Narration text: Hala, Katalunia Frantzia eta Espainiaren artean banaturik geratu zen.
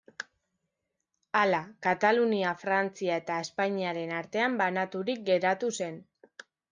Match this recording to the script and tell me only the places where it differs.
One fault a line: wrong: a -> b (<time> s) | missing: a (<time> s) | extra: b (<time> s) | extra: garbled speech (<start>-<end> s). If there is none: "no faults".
no faults